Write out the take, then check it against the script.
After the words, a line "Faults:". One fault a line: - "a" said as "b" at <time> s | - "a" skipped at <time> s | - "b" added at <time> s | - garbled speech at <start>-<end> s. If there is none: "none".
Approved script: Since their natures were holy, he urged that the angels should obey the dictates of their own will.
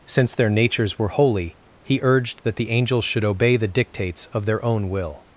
Since their natures were holy, he urged that the angels should obey the dictates of their own will.
Faults:
none